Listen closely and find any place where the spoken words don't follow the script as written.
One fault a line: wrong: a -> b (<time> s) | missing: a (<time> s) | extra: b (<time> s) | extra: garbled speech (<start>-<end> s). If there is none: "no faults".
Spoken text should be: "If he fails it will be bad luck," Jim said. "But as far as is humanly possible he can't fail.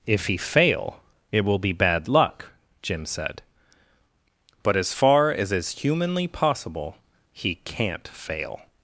wrong: fails -> fail (0.4 s)